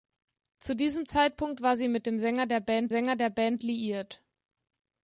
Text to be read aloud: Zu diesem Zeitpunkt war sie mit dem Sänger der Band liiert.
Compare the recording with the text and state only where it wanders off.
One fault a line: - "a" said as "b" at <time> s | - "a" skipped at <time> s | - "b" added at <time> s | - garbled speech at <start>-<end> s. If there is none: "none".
- "Sänger der Band" added at 2.9 s